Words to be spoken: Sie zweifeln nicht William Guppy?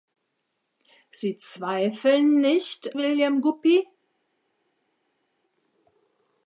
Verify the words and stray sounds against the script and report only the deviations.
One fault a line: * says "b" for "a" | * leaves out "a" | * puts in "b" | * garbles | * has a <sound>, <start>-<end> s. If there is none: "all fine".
all fine